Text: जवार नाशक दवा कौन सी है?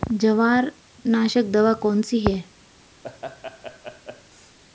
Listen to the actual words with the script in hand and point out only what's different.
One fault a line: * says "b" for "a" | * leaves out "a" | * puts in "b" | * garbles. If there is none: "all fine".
all fine